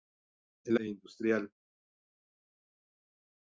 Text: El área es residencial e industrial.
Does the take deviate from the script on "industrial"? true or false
false